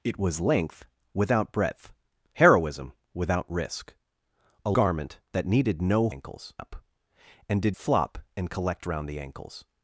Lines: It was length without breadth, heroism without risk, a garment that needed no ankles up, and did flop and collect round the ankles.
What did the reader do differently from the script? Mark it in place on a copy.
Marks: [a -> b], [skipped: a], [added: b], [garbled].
It was length without breadth, heroism without risk, a garment that needed no ankles up, and did flop and collect round the ankles.